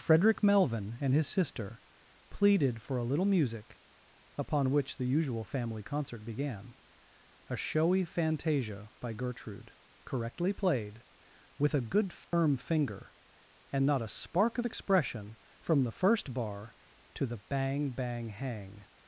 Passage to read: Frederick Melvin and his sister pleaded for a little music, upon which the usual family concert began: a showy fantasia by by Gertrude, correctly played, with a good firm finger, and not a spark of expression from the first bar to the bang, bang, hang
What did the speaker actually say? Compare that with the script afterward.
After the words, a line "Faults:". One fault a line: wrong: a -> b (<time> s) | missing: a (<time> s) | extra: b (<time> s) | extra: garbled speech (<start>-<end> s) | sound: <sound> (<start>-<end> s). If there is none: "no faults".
Frederick Melvin and his sister pleaded for a little music, upon which the usual family concert began: a showy fantasia by Gertrude, correctly played, with a good firm finger, and not a spark of expression from the first bar to the bang, bang, hang
Faults:
missing: by (9.1 s)
sound: dropout (12.2-12.3 s)